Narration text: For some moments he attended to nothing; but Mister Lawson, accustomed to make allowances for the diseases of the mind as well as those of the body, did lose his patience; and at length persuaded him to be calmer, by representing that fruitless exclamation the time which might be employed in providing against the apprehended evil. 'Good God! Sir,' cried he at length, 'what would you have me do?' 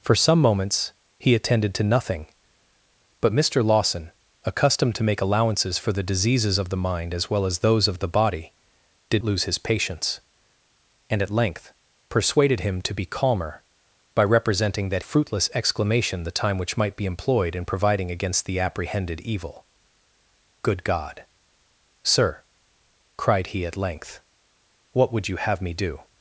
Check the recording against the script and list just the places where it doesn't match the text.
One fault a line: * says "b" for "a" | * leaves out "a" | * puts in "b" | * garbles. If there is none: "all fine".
all fine